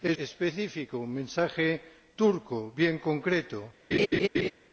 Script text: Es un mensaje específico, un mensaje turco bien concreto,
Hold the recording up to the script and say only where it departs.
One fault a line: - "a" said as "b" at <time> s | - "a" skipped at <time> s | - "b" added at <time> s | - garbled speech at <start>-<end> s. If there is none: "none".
- "un mensaje" skipped at 0.2 s